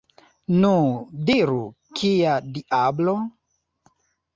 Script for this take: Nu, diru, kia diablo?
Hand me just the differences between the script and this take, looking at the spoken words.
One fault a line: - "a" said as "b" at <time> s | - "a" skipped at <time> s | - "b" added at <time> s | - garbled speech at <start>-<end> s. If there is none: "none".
none